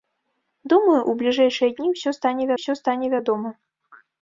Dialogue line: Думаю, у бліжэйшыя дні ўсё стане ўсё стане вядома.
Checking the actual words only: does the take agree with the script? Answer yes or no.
yes